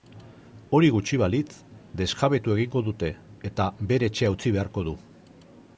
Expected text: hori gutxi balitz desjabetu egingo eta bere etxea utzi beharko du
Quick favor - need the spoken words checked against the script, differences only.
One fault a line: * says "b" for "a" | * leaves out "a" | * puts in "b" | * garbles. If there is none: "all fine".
* puts in "dute"